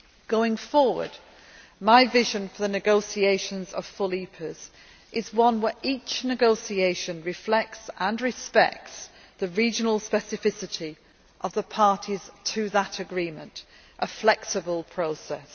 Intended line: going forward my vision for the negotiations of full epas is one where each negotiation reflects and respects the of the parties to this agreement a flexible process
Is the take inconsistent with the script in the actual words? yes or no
yes